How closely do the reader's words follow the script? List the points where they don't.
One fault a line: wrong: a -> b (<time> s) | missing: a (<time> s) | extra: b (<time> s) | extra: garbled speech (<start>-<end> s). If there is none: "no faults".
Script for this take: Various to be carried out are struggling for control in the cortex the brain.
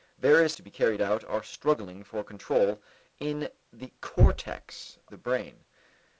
no faults